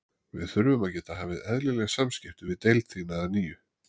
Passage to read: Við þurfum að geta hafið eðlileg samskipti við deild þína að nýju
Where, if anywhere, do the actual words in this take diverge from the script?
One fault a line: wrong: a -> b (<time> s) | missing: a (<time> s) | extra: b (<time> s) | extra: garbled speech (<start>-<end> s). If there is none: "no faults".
no faults